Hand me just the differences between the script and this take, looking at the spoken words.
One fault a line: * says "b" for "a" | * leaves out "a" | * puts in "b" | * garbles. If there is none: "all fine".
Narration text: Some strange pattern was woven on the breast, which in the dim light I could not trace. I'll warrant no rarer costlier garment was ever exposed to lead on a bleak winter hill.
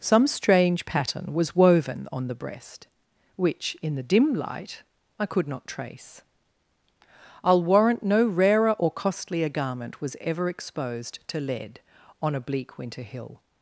* puts in "or"